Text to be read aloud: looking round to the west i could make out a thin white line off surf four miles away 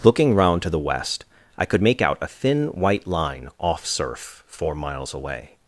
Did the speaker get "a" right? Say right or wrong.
right